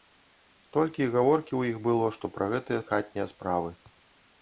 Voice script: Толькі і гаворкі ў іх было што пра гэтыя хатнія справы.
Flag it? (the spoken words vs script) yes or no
no